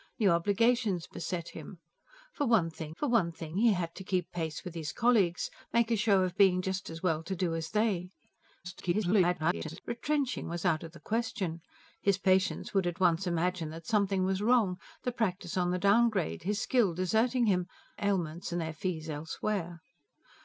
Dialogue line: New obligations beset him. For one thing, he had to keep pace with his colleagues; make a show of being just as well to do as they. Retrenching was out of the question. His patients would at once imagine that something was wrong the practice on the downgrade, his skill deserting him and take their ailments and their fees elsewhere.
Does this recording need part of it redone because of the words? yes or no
yes